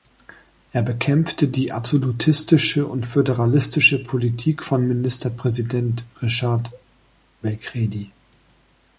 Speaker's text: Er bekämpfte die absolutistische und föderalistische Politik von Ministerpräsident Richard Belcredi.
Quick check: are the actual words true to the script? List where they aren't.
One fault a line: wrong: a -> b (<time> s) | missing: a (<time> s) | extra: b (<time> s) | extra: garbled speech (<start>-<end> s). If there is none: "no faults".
no faults